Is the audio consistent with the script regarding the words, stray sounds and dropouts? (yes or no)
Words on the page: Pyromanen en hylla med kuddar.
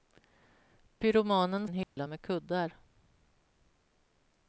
no